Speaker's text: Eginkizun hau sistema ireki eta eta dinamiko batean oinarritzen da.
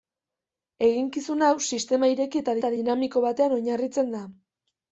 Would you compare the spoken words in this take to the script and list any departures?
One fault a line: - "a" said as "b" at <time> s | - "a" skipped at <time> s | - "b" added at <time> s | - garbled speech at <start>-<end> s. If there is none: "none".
none